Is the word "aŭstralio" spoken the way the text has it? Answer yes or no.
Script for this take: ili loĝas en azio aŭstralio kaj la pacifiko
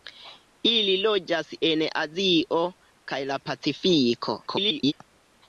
no